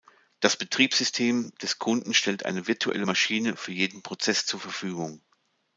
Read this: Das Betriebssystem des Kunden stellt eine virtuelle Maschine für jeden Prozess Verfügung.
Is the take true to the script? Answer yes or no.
no